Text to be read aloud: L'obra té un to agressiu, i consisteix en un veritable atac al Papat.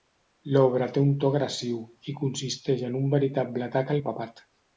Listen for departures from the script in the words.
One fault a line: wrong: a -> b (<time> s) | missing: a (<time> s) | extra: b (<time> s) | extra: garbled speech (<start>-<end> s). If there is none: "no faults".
no faults